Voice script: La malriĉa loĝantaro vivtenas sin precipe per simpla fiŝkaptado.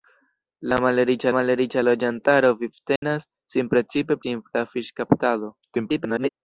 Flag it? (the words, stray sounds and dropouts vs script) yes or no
yes